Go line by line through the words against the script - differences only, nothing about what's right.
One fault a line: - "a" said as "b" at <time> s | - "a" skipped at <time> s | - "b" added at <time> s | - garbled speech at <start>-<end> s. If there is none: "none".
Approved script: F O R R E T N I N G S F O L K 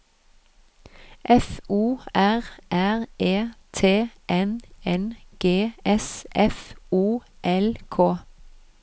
- "I" skipped at 4.6 s